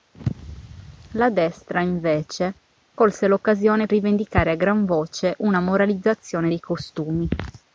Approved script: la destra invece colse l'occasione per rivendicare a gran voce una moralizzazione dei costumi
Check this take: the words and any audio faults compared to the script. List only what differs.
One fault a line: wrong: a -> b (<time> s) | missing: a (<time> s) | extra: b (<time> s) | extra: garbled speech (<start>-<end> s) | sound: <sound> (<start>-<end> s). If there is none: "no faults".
missing: per (3.9 s)